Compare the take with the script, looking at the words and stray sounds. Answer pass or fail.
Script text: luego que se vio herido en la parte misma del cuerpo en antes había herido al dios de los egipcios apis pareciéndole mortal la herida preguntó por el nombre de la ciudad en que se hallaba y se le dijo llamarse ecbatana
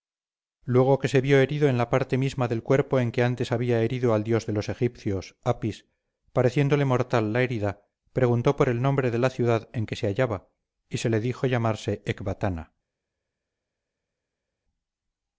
fail